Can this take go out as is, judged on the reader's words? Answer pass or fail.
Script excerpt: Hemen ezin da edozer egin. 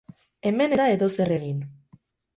fail